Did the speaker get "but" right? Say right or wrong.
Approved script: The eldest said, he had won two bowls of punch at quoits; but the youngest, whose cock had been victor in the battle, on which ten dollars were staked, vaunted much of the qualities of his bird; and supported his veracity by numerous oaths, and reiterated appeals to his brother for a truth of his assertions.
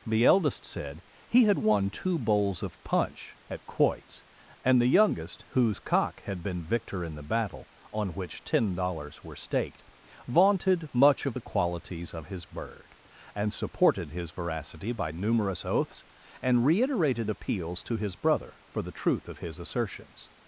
wrong